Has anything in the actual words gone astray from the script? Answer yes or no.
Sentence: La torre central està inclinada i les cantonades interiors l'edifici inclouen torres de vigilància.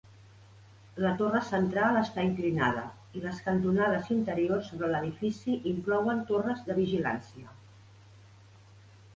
yes